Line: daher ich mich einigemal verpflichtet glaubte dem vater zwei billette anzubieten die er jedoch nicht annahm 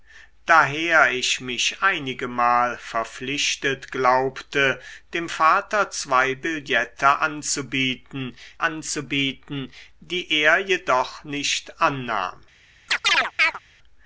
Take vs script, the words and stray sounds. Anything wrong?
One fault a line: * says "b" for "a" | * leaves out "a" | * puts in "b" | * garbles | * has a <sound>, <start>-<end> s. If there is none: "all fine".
* puts in "anzubieten"
* has a chirp, 12.9-13.6 s